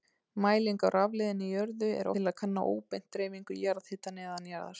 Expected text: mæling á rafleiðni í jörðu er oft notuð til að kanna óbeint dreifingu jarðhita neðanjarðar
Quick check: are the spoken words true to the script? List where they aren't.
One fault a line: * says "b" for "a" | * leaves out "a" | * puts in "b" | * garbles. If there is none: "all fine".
* leaves out "oft notuð"